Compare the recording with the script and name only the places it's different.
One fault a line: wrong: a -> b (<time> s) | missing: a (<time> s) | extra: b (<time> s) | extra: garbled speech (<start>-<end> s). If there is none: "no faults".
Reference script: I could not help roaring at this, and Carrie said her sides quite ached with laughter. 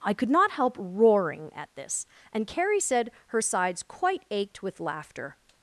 no faults